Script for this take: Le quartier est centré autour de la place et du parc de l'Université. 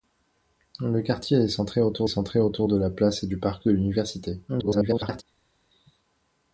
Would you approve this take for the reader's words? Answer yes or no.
no